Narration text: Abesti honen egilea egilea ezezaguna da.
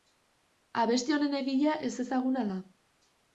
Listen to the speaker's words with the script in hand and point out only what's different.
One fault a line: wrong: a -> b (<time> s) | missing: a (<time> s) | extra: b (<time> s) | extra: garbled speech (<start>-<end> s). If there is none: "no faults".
missing: egilea (1.7 s)